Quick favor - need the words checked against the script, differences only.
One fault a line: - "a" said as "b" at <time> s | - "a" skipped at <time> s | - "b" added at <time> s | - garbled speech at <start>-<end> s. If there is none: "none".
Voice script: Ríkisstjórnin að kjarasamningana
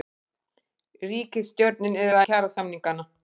none